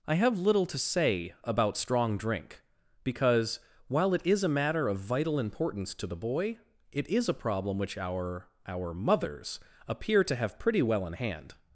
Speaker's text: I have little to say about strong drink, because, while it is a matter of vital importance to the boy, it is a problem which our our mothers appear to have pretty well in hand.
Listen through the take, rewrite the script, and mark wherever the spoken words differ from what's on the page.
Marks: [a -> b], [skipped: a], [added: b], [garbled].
I have little to say about strong drink, because, while it is a matter of vital importance to the boy, it is a problem which our our mothers appear to have pretty well in hand.